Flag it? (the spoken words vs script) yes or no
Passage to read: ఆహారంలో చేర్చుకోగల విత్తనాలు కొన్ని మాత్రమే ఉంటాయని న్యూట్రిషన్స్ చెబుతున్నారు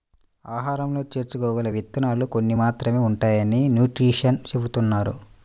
no